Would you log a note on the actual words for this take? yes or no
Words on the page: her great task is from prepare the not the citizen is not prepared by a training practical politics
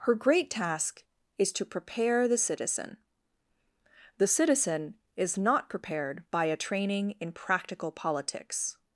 yes